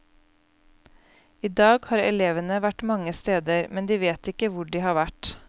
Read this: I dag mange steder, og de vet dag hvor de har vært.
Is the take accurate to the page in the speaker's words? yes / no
no